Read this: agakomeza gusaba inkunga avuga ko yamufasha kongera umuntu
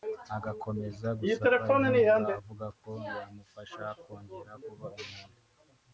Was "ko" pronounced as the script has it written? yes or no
yes